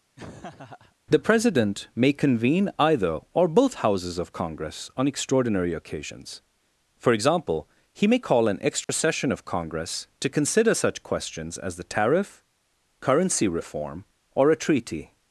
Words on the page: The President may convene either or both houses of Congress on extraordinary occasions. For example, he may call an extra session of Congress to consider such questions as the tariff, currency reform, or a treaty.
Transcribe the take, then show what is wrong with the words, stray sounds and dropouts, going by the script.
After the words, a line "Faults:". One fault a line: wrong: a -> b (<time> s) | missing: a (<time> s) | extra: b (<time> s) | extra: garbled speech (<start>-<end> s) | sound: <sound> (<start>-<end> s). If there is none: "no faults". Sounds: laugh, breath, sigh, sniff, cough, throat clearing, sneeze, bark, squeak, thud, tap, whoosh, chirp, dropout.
The President may convene either or both houses of Congress on extraordinary occasions. For example, he may call an extra session of Congress to consider such questions as the tariff, currency reform, or a treaty.
Faults:
sound: laugh (0.2-1.0 s)
sound: dropout (8.8-8.9 s)